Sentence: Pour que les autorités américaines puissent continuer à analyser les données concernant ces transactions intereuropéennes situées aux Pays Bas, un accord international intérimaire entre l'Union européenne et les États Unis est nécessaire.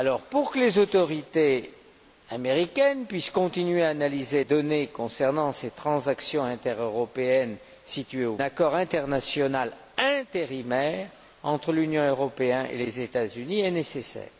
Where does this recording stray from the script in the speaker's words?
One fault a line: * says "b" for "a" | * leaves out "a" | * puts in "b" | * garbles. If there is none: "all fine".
* leaves out "les"
* leaves out "Pays Bas un"